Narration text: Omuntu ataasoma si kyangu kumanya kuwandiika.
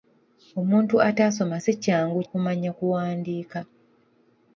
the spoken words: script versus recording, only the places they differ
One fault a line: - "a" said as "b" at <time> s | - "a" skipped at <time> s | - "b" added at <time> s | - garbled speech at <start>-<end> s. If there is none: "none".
none